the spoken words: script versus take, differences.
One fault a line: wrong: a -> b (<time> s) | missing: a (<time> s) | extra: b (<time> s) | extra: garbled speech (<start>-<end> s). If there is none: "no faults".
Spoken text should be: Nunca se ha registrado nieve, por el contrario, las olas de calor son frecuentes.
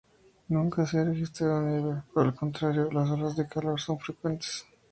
no faults